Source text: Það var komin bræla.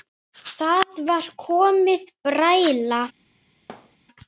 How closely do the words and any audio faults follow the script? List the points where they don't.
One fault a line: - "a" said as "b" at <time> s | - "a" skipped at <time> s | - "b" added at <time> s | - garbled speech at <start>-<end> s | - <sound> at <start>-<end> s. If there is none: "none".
- thud at 3.7-4.0 s